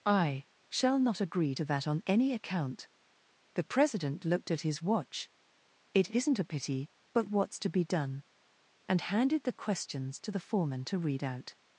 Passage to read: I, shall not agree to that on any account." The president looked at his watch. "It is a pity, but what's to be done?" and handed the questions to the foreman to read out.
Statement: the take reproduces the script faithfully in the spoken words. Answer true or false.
false